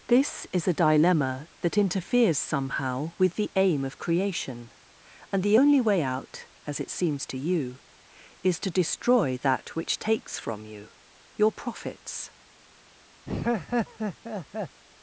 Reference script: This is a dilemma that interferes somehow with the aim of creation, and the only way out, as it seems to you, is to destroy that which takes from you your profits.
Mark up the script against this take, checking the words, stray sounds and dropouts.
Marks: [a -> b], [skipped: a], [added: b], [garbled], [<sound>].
This is a dilemma that interferes somehow with the aim of creation, and the only way out, as it seems to you, is to destroy that which takes from you your profits. [laugh]